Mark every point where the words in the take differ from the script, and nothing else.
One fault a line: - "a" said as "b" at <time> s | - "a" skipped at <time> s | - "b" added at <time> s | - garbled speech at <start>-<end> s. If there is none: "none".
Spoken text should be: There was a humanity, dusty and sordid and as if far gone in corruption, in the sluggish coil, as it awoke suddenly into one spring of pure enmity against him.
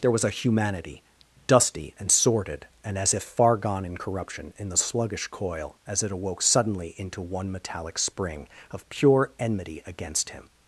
- "metallic" added at 7.5 s